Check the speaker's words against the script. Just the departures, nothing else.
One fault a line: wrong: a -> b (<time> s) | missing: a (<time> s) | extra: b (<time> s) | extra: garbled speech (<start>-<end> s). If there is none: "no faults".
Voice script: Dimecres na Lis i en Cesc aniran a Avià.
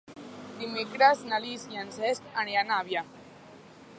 no faults